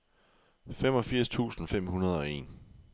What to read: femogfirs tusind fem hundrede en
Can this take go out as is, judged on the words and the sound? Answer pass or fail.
fail